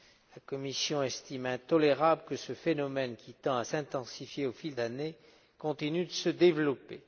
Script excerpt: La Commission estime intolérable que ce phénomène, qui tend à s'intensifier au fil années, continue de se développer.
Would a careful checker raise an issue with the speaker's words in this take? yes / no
no